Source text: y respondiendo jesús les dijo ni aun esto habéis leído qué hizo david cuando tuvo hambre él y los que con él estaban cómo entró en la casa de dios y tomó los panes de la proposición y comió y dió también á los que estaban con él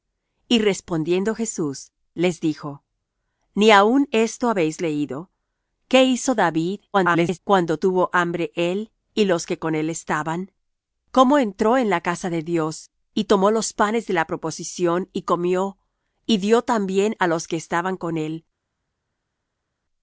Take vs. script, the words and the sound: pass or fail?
fail